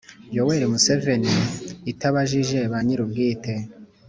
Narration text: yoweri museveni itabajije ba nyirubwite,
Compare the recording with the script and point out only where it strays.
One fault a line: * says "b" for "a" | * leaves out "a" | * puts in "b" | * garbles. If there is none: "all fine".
all fine